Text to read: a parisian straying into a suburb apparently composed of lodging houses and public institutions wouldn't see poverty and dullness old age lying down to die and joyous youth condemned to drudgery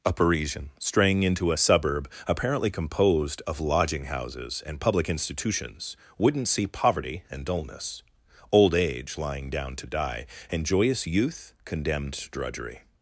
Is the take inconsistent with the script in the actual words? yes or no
no